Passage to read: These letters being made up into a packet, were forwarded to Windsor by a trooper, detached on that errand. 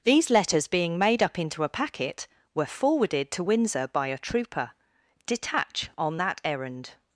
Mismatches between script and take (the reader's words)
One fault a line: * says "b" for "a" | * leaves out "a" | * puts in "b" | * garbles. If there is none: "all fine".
* says "detach" for "detached"